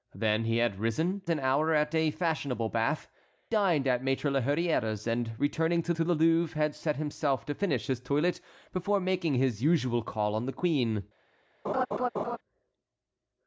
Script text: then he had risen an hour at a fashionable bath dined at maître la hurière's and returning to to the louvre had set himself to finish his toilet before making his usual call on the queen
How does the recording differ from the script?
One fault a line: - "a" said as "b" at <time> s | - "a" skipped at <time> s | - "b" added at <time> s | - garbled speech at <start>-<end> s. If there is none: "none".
none